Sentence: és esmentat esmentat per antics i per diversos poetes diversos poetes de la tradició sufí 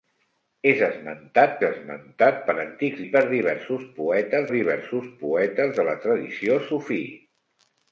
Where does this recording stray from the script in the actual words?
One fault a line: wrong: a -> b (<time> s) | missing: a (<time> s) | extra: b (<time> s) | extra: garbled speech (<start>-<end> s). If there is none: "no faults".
no faults